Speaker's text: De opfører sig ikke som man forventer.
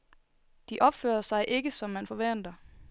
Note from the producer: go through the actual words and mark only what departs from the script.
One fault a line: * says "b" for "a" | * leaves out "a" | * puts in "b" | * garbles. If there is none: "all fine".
all fine